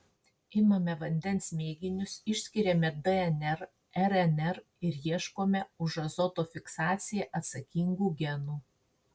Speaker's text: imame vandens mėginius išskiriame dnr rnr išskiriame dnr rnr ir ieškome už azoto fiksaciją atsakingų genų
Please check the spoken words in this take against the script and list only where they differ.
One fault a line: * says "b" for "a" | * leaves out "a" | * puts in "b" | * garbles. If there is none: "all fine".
* leaves out "išskiriame dnr rnr"